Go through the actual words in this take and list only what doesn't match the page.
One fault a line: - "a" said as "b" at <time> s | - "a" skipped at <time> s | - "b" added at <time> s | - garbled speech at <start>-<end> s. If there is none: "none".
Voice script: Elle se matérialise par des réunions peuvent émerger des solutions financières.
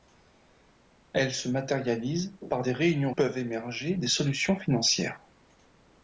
none